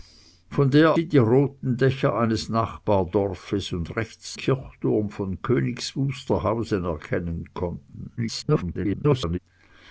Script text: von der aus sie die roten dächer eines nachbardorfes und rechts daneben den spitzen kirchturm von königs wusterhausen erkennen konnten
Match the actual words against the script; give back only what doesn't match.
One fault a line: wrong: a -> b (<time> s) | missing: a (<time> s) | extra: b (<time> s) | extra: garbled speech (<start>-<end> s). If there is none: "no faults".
missing: aus (0.9 s)
missing: daneben den spitzen (4.3 s)
extra: garbled speech (8.2-9.4 s)